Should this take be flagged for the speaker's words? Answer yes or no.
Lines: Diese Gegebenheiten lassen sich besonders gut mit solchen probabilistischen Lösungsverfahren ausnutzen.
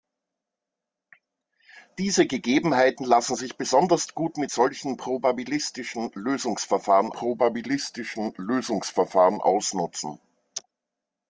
yes